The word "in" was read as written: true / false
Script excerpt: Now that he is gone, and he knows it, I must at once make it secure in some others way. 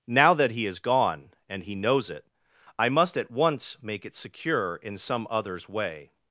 true